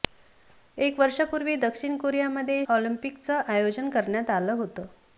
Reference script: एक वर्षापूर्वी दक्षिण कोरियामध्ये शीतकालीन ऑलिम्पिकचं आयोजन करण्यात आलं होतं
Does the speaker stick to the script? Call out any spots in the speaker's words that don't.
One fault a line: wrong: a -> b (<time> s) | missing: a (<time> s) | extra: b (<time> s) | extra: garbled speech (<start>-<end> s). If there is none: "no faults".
missing: शीतकालीन (2.6 s)